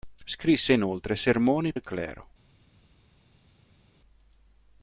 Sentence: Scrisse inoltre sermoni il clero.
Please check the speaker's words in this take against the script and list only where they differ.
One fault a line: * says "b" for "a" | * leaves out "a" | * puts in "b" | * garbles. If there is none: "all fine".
all fine